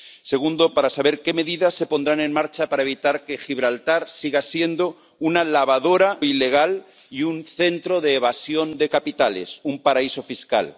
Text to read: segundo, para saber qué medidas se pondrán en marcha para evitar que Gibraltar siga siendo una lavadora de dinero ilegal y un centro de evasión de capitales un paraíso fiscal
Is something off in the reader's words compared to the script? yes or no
yes